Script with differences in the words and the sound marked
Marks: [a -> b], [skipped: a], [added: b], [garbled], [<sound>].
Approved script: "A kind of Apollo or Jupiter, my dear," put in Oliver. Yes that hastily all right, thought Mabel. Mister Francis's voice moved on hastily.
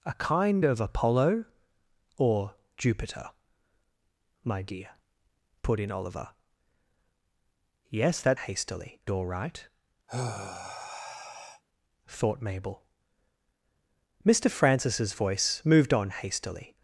"A kind of Apollo or Jupiter, my dear," put in Oliver. Yes that hastily all right, [sigh] thought Mabel. Mister Francis's voice moved on hastily.